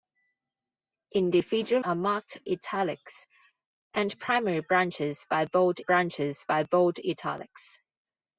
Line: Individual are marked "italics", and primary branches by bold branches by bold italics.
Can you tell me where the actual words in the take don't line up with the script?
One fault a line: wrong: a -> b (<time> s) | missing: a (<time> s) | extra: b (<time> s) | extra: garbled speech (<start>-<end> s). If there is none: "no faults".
no faults